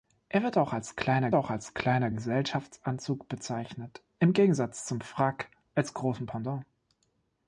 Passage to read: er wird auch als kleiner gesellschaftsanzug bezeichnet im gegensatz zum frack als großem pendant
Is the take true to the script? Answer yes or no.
no